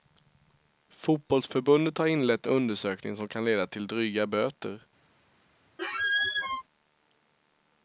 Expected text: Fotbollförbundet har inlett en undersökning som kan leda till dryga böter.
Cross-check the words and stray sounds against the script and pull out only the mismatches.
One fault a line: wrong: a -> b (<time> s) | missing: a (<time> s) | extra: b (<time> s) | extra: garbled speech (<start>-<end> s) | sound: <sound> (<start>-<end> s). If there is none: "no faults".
missing: en (2.5 s)
sound: squeak (5.8-6.6 s)